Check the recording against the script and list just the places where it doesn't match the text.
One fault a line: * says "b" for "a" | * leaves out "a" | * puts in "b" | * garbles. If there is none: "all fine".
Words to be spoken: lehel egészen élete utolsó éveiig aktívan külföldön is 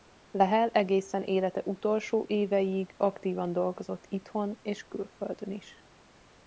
* puts in "dolgozott itthon és"